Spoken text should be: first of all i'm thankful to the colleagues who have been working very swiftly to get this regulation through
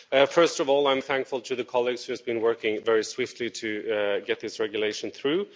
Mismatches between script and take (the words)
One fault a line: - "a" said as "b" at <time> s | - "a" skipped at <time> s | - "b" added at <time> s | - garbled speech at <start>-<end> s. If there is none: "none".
none